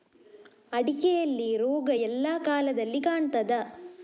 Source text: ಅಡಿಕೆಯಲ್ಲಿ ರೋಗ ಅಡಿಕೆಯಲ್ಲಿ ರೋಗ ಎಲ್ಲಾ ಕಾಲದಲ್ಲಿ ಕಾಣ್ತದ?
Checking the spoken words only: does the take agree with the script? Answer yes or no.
no